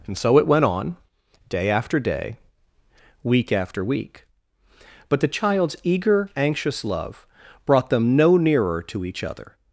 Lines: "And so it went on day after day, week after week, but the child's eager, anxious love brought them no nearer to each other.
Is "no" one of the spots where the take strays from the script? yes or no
no